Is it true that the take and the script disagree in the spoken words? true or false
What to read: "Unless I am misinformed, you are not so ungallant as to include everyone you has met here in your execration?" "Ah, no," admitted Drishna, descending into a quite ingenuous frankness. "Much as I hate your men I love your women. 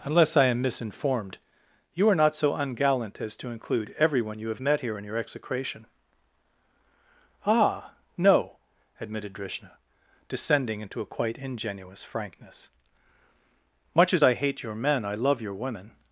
true